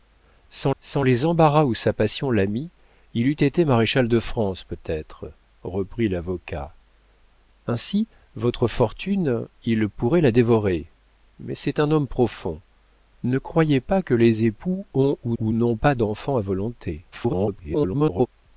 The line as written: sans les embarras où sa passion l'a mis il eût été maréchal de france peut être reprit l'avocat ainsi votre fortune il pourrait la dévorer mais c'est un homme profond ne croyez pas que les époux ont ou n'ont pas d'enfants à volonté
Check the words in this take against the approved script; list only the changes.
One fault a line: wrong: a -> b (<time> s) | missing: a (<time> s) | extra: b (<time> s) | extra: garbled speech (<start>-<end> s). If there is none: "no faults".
extra: sans (0.8 s)
extra: ou (15.4 s)
extra: garbled speech (17.1-18.3 s)